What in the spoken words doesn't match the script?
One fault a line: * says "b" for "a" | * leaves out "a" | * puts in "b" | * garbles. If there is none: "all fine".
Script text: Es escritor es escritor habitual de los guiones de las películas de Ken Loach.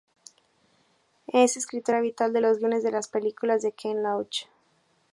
* leaves out "es escritor"